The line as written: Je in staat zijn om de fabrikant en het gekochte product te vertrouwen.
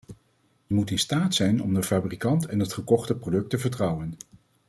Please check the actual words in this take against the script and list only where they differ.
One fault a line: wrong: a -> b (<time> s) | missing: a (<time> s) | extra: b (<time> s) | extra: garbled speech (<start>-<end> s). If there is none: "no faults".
extra: moet (0.7 s)